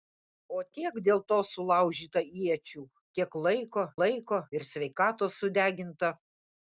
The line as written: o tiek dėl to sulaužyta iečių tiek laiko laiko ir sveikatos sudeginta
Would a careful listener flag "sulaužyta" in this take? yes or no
no